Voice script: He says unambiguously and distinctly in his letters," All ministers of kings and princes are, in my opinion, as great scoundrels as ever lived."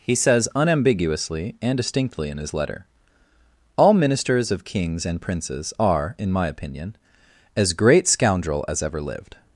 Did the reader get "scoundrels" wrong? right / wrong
wrong